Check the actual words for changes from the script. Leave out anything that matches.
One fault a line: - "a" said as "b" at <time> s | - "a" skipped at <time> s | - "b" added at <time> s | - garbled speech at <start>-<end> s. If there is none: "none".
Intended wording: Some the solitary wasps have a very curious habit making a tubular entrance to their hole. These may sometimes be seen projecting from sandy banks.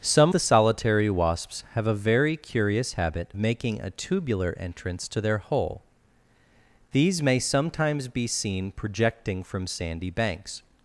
none